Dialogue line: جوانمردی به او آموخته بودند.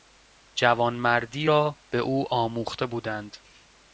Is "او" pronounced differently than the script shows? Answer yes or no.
no